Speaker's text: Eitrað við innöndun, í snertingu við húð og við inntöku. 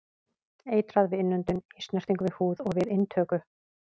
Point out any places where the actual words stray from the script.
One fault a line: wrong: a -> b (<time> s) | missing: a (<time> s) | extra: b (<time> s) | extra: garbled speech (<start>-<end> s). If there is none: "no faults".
no faults